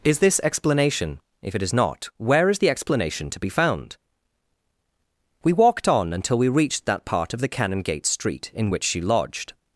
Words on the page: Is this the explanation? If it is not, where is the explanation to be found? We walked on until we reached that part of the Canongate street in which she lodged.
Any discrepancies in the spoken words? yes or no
yes